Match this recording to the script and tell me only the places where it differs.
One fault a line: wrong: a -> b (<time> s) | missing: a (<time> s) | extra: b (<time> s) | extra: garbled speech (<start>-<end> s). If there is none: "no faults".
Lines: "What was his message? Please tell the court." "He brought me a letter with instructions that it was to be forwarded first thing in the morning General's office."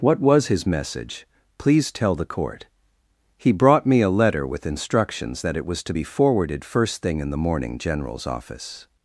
no faults